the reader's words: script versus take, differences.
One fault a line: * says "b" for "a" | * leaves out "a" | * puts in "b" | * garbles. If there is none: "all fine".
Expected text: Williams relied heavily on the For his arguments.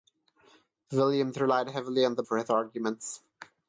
all fine